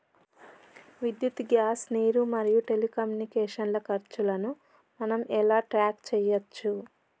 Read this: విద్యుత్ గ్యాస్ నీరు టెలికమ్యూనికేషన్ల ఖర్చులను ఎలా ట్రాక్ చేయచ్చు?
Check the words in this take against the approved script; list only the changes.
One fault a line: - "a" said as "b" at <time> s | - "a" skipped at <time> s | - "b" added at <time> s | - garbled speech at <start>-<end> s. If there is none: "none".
- "మరియు" added at 2.3 s
- "మనం" added at 5.0 s